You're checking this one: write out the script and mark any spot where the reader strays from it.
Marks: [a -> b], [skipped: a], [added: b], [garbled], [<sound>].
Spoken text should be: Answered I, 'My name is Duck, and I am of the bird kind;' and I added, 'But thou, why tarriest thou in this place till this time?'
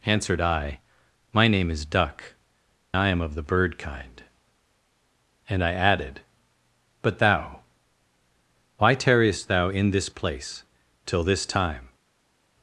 Answered I, 'My name is Duck, [skipped: and] I am of the bird kind;' and I added, 'But thou, why tarriest thou in this place till this time?'